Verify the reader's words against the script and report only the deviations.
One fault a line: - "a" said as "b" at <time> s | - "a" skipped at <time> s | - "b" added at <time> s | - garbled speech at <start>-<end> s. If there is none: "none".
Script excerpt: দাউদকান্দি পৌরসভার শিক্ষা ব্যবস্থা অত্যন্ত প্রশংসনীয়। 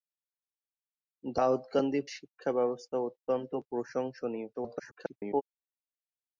- "পৌরসভার" skipped at 2.0 s
- garbled speech at 4.5-5.4 s